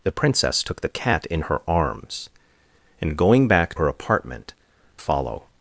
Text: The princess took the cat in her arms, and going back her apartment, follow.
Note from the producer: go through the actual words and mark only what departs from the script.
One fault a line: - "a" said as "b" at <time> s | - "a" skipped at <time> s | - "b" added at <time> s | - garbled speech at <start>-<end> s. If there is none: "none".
none